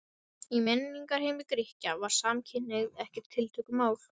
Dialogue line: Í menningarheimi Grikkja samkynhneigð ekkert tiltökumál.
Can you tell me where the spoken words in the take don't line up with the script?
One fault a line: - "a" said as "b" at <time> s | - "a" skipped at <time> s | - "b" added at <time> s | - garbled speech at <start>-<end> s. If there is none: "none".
- "var" added at 2.0 s